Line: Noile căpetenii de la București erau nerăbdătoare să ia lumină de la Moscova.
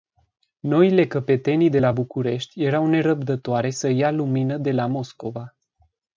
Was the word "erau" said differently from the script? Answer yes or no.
no